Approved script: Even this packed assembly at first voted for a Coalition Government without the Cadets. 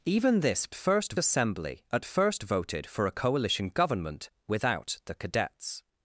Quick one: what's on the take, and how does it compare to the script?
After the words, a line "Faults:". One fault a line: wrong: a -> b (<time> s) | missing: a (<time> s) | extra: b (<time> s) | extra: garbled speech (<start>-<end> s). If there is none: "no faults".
Even this first assembly at first voted for a Coalition Government without the Cadets.
Faults:
wrong: packed -> first (0.7 s)